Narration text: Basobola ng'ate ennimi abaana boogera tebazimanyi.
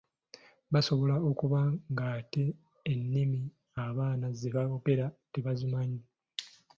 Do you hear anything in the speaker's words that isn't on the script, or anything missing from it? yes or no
yes